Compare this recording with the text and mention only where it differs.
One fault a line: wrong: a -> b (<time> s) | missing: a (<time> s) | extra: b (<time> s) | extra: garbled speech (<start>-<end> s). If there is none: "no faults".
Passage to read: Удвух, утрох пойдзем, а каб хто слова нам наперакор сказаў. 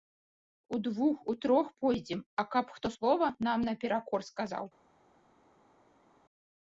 no faults